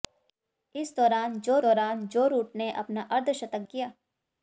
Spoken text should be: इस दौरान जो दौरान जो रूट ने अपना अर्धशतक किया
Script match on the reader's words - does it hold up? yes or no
yes